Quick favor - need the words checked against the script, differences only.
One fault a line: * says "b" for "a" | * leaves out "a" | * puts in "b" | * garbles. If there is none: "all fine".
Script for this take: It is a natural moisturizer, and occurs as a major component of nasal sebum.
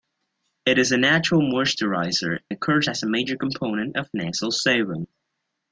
* leaves out "and"